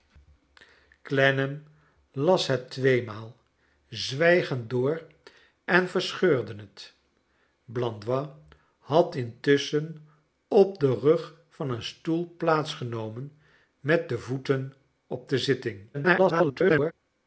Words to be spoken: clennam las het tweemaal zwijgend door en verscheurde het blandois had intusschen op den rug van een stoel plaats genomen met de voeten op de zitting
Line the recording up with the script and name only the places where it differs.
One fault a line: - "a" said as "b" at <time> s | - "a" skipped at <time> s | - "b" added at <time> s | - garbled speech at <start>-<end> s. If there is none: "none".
- garbled speech at 15.9-16.9 s